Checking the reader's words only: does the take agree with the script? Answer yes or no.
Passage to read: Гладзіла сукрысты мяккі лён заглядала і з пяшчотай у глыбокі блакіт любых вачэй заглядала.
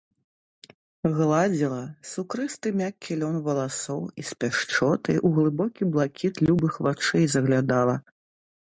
no